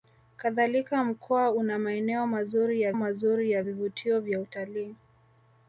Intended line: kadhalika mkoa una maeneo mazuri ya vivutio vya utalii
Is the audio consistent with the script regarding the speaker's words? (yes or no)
no